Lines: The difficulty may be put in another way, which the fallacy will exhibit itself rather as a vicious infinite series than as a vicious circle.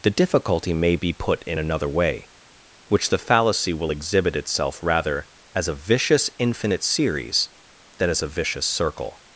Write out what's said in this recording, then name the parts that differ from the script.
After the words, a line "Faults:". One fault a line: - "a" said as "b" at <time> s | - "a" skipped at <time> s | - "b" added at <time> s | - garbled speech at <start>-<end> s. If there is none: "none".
The difficulty may be put in another way, which the fallacy will exhibit itself rather as a vicious infinite series than as a vicious circle.
Faults:
none